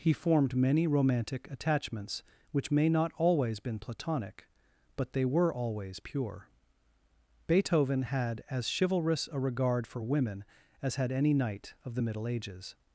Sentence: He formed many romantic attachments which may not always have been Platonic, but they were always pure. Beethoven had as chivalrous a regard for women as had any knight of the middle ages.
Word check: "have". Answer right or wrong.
wrong